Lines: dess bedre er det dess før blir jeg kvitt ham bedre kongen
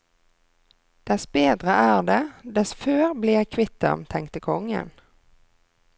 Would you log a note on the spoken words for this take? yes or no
yes